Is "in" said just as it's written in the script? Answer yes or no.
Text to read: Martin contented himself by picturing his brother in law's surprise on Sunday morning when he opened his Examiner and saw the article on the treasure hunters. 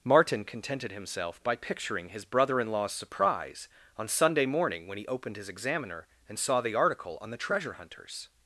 yes